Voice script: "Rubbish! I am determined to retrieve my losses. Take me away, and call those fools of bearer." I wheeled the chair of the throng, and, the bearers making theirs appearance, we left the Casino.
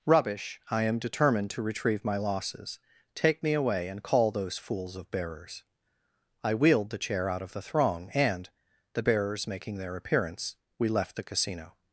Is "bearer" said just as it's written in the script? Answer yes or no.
no